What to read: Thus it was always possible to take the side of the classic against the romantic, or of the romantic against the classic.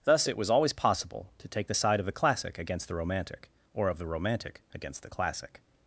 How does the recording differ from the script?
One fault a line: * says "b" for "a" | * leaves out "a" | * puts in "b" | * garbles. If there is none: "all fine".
all fine